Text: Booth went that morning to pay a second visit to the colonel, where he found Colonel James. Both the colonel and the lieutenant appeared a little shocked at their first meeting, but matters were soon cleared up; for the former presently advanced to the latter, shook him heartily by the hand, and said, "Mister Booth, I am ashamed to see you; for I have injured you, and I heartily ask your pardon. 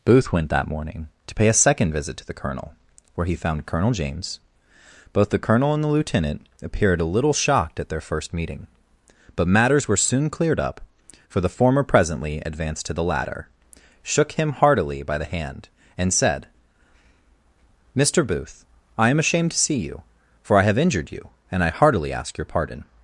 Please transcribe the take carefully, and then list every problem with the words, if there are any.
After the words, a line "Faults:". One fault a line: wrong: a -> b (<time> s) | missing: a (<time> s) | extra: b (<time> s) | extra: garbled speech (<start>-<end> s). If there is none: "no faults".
Booth went that morning to pay a second visit to the colonel, where he found Colonel James. Both the colonel and the lieutenant appeared a little shocked at their first meeting, but matters were soon cleared up; for the former presently advanced to the latter, shook him heartily by the hand, and said, "Mister Booth, I am ashamed to see you; for I have injured you, and I heartily ask your pardon.
Faults:
no faults